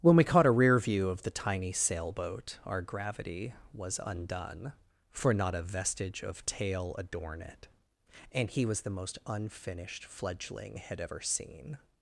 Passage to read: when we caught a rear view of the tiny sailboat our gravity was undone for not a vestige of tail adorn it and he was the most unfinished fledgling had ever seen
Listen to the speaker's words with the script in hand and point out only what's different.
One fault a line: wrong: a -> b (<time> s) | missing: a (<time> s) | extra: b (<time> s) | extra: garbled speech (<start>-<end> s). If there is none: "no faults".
no faults